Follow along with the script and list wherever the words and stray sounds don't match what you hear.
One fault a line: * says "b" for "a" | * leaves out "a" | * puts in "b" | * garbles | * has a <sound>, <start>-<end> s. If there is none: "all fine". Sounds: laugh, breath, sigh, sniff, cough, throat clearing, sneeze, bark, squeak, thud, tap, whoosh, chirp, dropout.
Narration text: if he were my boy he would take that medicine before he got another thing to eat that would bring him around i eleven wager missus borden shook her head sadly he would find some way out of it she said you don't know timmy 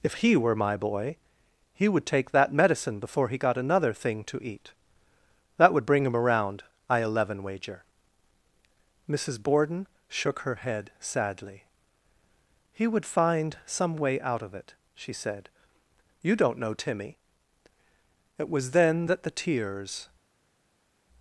* puts in "it was then that the tears"